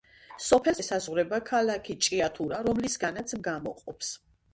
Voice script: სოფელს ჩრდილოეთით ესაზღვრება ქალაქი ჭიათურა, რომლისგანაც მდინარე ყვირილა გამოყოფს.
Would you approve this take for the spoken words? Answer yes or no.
no